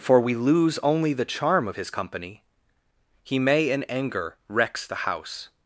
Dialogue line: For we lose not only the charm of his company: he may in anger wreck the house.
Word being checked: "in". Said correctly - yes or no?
yes